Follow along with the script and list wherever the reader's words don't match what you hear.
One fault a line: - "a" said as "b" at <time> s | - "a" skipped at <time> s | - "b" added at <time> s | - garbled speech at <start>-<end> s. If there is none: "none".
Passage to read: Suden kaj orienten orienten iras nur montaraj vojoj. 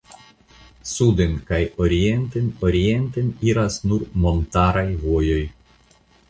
none